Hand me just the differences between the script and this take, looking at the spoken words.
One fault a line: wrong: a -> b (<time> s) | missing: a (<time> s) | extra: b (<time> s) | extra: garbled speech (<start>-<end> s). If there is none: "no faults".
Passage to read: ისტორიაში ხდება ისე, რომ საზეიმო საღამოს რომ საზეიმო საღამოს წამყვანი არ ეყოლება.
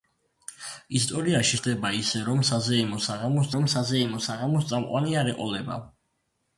no faults